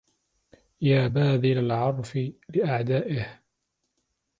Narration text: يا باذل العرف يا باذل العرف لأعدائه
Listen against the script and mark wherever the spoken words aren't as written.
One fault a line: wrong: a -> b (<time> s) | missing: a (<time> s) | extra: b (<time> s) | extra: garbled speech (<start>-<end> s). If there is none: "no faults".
missing: يا باذل العرف (2.2 s)